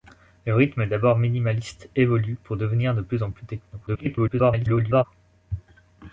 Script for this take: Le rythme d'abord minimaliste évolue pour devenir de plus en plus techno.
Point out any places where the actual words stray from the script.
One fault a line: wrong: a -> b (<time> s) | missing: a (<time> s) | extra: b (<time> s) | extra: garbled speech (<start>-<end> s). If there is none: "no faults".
extra: garbled speech (3.9-5.0 s)